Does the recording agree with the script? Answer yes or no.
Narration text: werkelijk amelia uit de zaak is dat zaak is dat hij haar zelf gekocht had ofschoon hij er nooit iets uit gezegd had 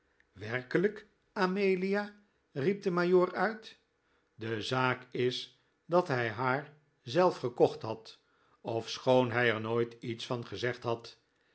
no